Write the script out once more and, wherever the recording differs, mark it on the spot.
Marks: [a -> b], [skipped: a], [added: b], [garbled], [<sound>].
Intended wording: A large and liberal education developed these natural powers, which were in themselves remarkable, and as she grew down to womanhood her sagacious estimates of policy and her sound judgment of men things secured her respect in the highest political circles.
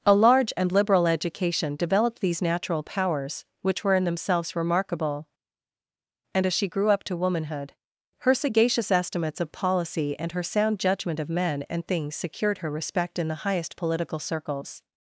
A large and liberal education developed these natural powers, which were in themselves remarkable, and as she grew [down -> up] to womanhood her sagacious estimates of policy and her sound judgment of men [added: and] things secured her respect in the highest political circles.